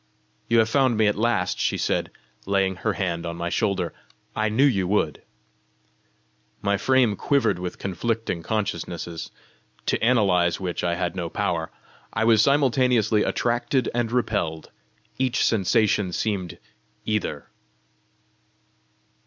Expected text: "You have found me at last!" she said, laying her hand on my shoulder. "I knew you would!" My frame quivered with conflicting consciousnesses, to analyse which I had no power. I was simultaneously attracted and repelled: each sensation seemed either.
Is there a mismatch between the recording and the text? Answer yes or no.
no